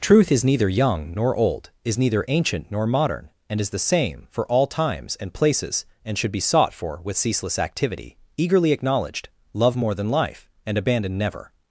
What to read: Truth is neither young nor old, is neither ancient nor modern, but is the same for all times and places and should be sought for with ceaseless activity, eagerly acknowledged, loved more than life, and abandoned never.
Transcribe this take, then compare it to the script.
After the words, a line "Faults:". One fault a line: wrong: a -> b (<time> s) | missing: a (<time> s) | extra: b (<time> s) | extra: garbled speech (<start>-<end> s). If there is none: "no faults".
Truth is neither young nor old, is neither ancient nor modern, and is the same for all times and places and should be sought for with ceaseless activity, eagerly acknowledged, love more than life, and abandoned never.
Faults:
wrong: but -> and (3.5 s)
wrong: loved -> love (9.5 s)